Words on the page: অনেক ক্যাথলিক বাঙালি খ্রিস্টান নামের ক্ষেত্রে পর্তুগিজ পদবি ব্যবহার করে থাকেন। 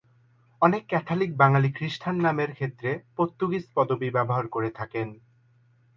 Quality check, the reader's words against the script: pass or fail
pass